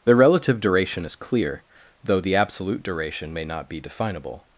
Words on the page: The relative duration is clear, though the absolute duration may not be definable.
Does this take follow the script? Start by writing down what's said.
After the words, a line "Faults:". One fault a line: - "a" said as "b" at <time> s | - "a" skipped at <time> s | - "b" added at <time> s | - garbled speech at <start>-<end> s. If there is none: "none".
The relative duration is clear, though the absolute duration may not be definable.
Faults:
none